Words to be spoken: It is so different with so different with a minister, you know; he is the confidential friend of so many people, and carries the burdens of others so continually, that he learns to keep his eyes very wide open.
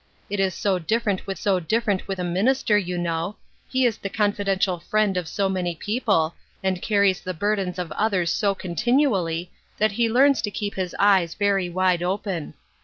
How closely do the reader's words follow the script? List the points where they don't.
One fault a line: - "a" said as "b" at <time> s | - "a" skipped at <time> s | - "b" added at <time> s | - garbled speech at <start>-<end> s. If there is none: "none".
none